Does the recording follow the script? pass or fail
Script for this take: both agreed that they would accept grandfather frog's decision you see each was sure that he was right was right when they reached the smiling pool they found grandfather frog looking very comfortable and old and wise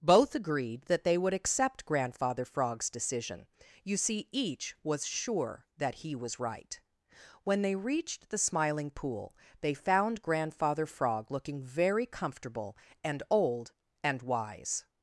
fail